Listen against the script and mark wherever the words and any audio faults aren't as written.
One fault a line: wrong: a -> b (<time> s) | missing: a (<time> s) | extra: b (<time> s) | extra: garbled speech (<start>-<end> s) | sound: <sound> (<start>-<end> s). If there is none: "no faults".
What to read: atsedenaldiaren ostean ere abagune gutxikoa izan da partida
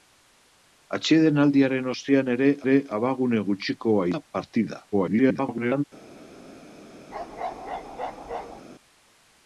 extra: ere (2.6 s)
missing: izan (4.1 s)
extra: garbled speech (4.9-5.8 s)
sound: bark (7.1-8.6 s)